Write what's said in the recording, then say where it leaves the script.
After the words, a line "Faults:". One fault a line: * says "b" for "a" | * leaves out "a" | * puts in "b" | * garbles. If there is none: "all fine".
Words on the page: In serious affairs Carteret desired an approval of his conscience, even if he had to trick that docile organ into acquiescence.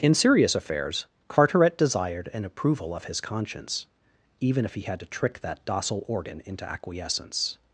In serious affairs Carteret desired an approval of his conscience, even if he had to trick that docile organ into acquiescence.
Faults:
all fine